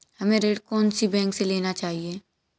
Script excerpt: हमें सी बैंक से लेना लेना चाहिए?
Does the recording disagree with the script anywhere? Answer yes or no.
yes